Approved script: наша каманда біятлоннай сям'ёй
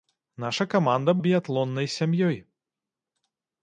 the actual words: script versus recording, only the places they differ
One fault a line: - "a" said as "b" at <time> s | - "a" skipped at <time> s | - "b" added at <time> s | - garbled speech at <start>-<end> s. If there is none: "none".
none